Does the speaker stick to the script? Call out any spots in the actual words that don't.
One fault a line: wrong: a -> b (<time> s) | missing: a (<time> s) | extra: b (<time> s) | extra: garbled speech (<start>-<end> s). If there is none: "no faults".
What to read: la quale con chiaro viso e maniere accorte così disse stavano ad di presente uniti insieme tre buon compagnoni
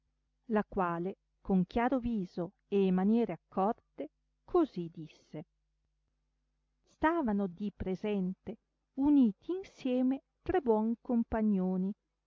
no faults